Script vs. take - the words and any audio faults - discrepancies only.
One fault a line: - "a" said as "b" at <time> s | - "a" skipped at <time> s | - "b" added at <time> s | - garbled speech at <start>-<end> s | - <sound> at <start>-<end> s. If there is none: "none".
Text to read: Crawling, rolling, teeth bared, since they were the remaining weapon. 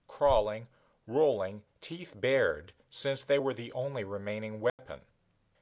- "only" added at 3.7 s
- dropout at 4.7-4.8 s